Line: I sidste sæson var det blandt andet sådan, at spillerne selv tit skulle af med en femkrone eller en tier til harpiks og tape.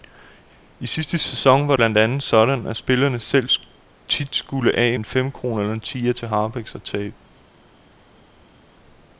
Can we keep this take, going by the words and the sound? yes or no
no